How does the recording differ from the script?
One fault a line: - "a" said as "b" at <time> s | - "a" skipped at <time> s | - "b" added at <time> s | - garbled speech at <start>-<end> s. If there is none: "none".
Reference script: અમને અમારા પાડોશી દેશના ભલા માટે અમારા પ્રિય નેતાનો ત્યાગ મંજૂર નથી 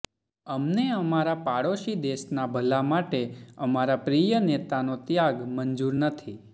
none